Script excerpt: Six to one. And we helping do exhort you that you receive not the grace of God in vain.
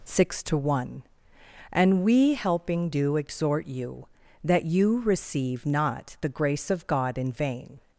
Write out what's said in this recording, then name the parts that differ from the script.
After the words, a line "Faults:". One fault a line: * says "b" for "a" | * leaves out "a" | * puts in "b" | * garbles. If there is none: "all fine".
Six to one. And we helping do exhort you that you receive not the grace of God in vain.
Faults:
all fine